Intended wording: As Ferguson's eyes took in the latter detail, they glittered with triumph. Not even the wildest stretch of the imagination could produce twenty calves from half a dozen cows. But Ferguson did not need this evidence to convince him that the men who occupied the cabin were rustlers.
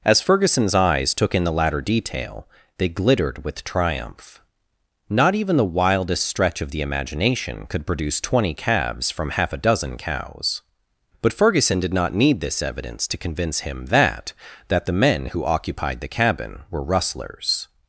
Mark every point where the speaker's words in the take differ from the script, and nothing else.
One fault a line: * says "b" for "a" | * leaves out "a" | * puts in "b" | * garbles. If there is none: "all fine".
* puts in "that"